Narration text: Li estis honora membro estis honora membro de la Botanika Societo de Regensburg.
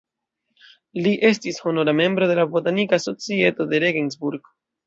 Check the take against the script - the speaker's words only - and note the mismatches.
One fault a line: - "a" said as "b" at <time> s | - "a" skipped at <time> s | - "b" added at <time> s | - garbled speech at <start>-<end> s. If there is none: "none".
- "estis honora membro" skipped at 2.3 s